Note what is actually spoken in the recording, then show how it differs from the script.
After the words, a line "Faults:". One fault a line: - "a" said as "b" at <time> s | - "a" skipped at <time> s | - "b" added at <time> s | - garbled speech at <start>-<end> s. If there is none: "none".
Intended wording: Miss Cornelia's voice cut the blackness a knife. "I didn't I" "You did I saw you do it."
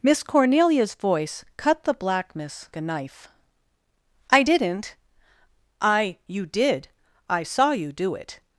Miss Cornelia's voice cut the blackness a knife. "I didn't I" "You did I saw you do it."
Faults:
none